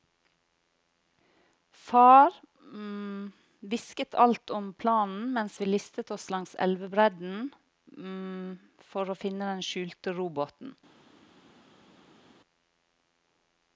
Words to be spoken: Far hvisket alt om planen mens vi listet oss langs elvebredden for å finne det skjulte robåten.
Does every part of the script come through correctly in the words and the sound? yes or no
no